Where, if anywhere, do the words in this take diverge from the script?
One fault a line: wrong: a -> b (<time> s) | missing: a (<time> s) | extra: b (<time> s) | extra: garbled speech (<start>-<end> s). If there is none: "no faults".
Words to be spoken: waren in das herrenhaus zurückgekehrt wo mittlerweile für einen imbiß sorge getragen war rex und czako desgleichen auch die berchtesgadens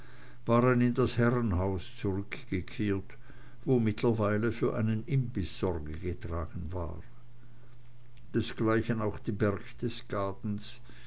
missing: rex und czako (7.0 s)